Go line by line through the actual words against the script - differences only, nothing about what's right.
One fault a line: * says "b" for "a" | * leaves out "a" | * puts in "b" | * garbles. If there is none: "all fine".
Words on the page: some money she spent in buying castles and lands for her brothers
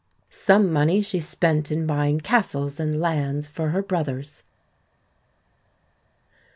all fine